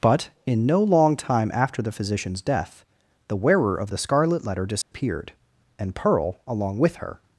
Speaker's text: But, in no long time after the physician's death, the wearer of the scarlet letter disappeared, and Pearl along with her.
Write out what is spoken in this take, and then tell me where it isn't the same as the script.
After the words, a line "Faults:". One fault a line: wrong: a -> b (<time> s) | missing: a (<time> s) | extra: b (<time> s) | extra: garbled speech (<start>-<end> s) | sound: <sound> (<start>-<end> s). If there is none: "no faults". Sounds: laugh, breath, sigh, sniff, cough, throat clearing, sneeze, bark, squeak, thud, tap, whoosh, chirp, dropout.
But, in no long time after the physician's death, the wearer of the scarlet letter disappeared, and Pearl along with her.
Faults:
sound: dropout (4.8-4.9 s)